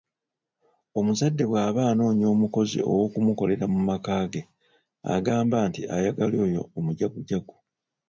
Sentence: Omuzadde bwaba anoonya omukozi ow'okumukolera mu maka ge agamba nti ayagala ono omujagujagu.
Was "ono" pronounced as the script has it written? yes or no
no